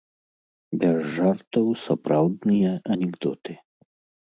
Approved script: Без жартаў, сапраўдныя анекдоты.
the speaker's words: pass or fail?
pass